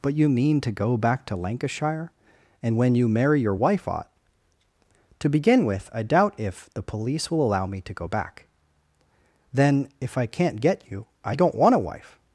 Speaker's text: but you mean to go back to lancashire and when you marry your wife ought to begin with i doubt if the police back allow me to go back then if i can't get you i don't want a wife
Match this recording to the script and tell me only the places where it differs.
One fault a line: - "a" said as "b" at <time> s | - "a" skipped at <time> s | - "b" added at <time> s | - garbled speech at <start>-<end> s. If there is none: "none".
- "back" said as "will" at 7.3 s